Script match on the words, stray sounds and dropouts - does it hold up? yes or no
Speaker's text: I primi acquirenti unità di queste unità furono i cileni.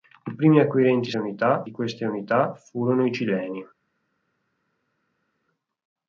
yes